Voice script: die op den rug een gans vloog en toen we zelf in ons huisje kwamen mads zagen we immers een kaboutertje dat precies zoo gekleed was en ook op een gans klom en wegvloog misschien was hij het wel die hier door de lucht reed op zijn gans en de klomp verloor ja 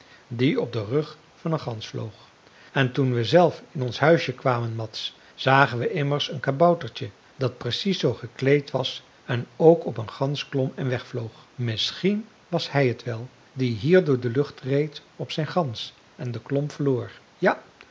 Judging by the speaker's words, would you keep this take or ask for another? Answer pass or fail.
fail